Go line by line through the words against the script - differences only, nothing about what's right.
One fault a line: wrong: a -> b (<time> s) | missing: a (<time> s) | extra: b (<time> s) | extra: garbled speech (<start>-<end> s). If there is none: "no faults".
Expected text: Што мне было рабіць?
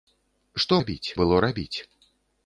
wrong: мне -> рабіць (0.8 s)